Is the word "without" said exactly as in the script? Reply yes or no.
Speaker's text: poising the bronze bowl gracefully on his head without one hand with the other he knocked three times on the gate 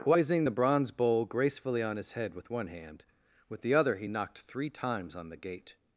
no